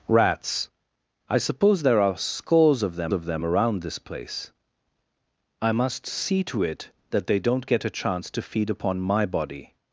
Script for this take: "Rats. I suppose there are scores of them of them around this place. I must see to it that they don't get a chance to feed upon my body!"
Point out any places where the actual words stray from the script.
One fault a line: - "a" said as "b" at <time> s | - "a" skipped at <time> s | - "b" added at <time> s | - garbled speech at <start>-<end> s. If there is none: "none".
none